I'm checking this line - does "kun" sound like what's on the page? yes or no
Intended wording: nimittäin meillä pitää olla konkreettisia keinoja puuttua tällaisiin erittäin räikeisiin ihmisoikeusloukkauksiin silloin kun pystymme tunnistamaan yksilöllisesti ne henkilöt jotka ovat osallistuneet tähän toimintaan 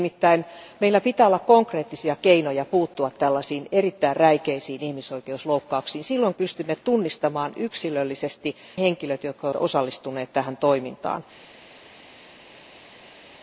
no